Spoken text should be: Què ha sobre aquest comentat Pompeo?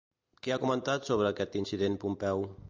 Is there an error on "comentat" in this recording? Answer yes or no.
yes